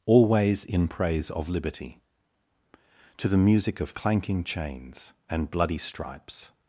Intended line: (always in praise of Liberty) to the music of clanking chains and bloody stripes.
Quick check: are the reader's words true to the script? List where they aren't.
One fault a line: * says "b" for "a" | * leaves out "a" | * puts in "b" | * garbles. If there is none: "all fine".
all fine